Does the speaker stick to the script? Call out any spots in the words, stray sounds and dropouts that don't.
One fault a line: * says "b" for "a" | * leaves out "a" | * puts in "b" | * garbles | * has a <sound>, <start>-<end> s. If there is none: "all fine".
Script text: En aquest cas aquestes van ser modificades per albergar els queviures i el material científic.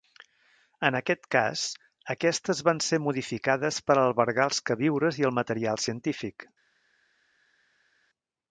all fine